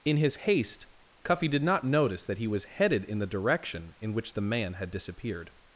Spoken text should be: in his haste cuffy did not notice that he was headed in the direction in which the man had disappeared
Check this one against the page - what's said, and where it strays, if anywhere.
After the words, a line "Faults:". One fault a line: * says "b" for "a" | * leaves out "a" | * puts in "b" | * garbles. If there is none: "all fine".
in his haste cuffy did not notice that he was headed in the direction in which the man had disappeared
Faults:
all fine